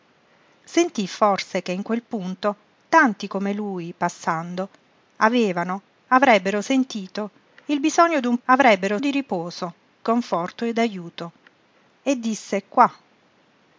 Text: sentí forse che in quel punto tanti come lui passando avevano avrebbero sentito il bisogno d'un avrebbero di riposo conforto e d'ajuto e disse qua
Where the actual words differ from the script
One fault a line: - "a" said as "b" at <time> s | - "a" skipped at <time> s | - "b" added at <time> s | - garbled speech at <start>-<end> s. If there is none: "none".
none